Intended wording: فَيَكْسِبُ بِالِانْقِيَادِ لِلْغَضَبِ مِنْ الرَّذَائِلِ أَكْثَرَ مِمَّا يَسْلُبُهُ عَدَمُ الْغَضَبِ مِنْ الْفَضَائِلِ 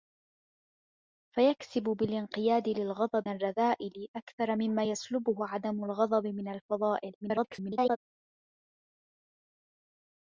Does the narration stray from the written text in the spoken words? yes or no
yes